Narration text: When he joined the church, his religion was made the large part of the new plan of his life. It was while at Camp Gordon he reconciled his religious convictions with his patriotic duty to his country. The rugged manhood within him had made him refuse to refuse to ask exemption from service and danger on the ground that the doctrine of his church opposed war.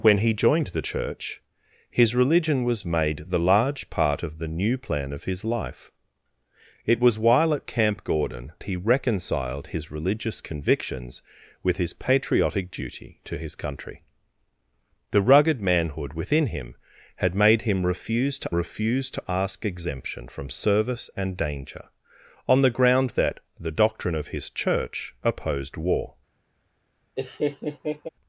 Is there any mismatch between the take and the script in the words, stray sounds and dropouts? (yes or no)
yes